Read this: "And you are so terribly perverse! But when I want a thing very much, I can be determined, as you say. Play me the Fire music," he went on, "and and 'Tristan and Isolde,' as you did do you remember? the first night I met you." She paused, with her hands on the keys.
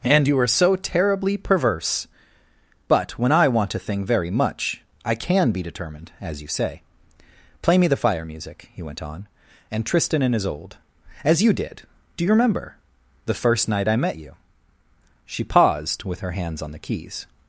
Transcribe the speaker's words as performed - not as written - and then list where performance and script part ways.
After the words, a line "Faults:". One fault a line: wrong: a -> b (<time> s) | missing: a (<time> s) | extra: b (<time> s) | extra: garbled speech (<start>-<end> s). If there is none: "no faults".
"And you are so terribly perverse! But when I want a thing very much, I can be determined, as you say. Play me the Fire music," he went on, "and 'Tristan and Isolde,' as you did do you remember? the first night I met you." She paused, with her hands on the keys.
Faults:
missing: and (9.9 s)